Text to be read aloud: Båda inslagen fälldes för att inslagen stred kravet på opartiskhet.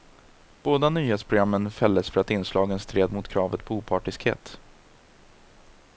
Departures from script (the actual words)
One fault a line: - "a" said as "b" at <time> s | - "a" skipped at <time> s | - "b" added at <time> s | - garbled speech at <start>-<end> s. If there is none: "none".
- "inslagen" said as "nyhetsprogrammen" at 0.9 s
- "mot" added at 3.1 s